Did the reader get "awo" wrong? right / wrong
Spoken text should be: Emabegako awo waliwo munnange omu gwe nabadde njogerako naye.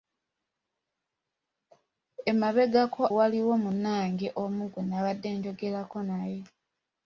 wrong